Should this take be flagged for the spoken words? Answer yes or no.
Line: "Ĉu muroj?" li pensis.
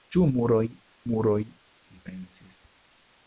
yes